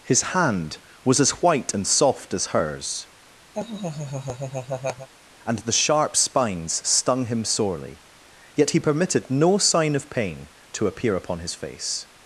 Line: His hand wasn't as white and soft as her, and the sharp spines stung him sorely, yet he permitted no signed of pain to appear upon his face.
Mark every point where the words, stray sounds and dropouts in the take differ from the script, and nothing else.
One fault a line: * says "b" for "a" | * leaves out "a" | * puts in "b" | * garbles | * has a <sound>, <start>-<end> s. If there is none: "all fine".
* says "was" for "wasn't"
* says "hers" for "her"
* has a laugh, 3.5-5.1 s
* says "sign" for "signed"